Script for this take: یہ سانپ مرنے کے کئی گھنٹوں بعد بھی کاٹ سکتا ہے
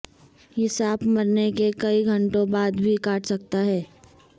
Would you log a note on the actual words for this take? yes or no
no